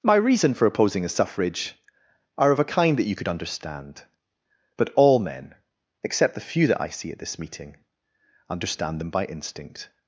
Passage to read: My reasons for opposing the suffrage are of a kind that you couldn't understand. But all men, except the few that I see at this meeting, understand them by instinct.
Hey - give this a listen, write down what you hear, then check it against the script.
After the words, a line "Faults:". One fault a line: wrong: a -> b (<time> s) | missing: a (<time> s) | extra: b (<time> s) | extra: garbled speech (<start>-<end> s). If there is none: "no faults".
My reason for opposing the suffrage are of a kind that you could understand. But all men, except the few that I see at this meeting, understand them by instinct.
Faults:
wrong: reasons -> reason (0.1 s)
wrong: couldn't -> could (3.1 s)